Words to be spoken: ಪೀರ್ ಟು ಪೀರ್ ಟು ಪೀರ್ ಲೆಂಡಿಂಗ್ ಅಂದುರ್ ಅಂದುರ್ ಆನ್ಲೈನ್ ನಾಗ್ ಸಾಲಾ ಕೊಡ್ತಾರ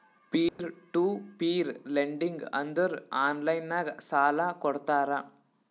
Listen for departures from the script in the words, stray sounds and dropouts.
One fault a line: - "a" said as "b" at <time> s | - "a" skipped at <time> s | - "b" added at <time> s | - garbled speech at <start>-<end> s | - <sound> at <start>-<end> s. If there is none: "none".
- dropout at 0.5-0.6 s
- "ಟು ಪೀರ್" skipped at 1.7 s
- "ಅಂದುರ್" skipped at 3.0 s